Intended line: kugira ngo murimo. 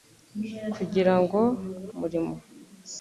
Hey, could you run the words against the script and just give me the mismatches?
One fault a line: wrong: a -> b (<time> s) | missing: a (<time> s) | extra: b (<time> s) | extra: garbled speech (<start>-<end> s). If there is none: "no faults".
no faults